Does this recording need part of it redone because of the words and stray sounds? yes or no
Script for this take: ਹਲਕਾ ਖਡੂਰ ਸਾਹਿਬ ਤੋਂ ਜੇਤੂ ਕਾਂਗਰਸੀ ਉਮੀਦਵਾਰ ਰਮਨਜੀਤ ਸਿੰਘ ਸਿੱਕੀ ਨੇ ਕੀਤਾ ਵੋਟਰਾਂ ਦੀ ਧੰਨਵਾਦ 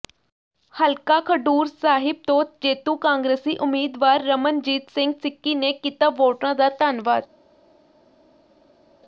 yes